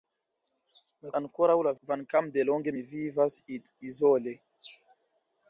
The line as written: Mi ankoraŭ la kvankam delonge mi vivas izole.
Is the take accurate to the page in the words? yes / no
yes